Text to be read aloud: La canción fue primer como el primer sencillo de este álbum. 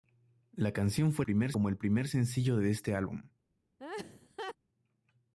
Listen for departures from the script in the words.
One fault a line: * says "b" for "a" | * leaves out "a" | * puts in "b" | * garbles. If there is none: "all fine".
all fine